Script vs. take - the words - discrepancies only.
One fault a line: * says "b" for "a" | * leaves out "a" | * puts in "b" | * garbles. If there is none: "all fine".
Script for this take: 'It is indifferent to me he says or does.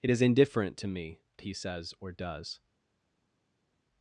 all fine